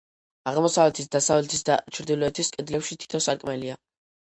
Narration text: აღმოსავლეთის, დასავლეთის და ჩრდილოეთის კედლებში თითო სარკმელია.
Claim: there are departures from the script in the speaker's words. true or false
false